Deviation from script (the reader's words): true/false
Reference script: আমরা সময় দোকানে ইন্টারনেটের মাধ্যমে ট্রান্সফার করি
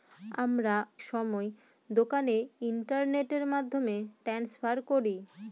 false